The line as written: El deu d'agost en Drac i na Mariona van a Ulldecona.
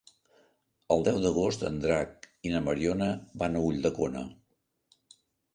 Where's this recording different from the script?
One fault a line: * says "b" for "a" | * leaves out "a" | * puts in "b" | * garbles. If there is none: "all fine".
all fine